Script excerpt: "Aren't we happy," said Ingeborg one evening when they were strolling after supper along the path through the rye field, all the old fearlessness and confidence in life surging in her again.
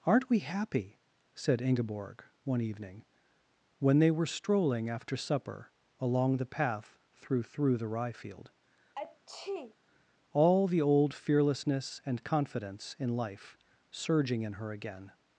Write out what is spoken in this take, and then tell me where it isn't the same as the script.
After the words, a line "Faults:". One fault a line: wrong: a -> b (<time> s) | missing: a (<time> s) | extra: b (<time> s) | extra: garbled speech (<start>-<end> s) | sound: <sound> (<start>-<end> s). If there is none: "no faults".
"Aren't we happy," said Ingeborg one evening when they were strolling after supper along the path through through the rye field, all the old fearlessness and confidence in life surging in her again.
Faults:
extra: through (7.4 s)
sound: sneeze (9.0-9.8 s)